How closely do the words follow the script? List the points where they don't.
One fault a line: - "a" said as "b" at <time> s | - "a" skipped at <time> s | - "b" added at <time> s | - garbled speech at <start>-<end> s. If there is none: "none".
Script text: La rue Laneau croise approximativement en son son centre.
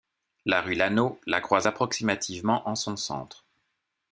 - "la" added at 1.3 s
- "son" skipped at 3.0 s